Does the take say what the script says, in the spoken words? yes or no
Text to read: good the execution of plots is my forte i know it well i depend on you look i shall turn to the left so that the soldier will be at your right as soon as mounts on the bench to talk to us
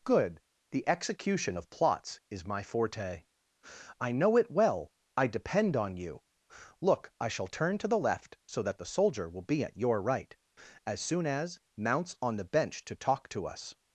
yes